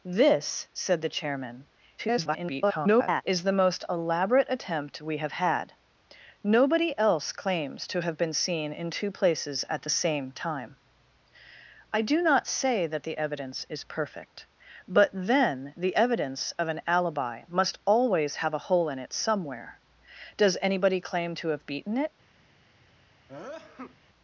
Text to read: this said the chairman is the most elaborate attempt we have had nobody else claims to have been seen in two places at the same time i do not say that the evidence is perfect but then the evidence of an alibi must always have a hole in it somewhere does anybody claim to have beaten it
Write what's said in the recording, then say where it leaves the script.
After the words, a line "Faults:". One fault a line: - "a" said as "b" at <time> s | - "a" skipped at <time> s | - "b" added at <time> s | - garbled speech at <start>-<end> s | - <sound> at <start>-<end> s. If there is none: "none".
this said the chairman [garbled] is the most elaborate attempt we have had nobody else claims to have been seen in two places at the same time i do not say that the evidence is perfect but then the evidence of an alibi must always have a hole in it somewhere does anybody claim to have beaten it
Faults:
- garbled speech at 2.0-3.2 s
- sneeze at 23.3-24.0 s